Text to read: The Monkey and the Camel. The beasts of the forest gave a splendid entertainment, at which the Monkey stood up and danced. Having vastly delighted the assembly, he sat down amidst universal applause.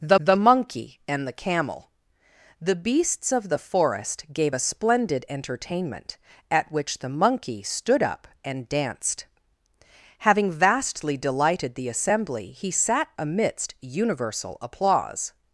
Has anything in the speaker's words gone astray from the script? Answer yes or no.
yes